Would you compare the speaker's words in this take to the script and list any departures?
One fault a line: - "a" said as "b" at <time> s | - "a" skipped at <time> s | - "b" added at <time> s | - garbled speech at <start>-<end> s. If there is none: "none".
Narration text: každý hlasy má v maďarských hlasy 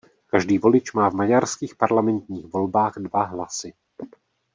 - "hlasy" said as "volič" at 0.6 s
- "parlamentních volbách dva" added at 1.7 s